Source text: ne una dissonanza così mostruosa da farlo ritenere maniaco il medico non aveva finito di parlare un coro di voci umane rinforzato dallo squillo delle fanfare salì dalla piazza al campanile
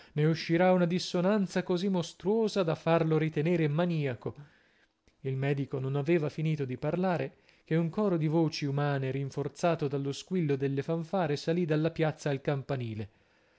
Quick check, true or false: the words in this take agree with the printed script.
false